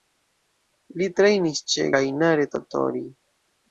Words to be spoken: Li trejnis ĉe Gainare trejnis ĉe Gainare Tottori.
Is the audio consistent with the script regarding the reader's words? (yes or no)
no